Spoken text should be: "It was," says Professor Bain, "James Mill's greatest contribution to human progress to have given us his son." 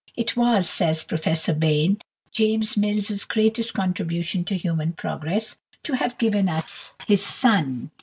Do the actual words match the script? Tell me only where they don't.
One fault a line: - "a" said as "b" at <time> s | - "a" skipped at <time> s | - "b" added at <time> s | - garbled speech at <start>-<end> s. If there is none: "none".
none